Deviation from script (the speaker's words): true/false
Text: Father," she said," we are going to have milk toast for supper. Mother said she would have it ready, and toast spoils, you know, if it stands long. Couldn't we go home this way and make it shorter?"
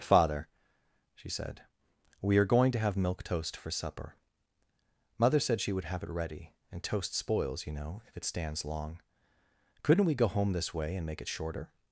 false